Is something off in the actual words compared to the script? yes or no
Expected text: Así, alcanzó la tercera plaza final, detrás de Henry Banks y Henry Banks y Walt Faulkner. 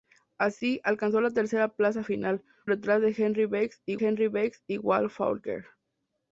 no